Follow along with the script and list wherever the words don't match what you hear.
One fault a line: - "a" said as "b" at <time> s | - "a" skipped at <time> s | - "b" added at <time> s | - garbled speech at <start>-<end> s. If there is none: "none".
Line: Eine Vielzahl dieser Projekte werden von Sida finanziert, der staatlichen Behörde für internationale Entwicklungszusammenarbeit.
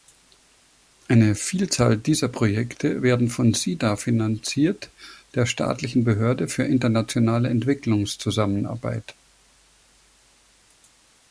none